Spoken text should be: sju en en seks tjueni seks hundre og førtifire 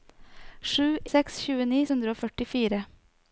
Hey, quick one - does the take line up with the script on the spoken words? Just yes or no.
no